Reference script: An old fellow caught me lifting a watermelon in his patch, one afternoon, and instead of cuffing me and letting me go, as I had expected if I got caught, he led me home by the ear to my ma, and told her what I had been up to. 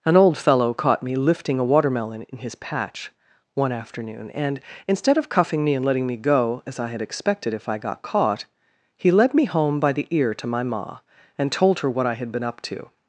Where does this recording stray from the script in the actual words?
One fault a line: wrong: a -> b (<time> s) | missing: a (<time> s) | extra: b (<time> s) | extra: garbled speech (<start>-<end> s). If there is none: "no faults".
no faults